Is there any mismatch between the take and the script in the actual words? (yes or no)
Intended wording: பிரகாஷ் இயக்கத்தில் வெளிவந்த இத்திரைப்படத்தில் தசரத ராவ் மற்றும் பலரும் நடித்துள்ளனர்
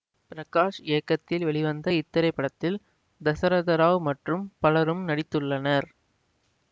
no